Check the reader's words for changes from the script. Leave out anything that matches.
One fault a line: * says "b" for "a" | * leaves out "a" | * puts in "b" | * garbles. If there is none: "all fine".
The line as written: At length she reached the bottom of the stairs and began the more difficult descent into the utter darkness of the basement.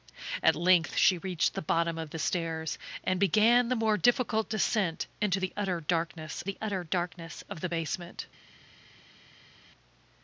* puts in "the utter darkness"